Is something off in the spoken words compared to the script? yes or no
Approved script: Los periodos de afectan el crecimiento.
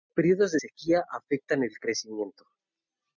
yes